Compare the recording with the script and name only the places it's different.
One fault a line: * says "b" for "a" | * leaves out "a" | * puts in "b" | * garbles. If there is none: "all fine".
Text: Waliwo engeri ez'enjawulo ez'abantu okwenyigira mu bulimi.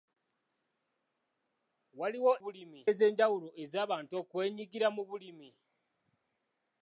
* says "bulimi" for "engeri"